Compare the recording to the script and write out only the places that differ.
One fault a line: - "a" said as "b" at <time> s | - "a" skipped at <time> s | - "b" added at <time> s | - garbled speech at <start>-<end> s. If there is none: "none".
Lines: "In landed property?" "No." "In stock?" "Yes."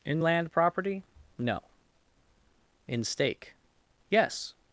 - "landed" said as "land" at 0.2 s
- "stock" said as "stake" at 3.0 s